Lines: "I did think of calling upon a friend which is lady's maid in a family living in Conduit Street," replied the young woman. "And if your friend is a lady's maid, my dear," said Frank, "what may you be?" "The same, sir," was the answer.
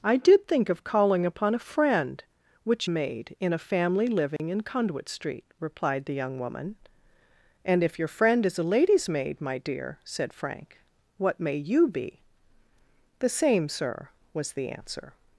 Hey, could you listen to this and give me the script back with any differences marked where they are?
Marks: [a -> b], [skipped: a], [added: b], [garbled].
"I did think of calling upon a friend which [skipped: is lady's] maid in a family living in Conduit Street," replied the young woman. "And if your friend is a lady's maid, my dear," said Frank, "what may you be?" "The same, sir," was the answer.